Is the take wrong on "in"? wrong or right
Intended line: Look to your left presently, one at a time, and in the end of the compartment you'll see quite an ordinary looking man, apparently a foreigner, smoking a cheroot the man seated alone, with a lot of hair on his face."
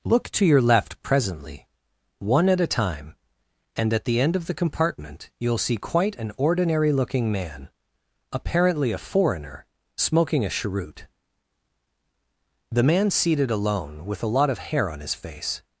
wrong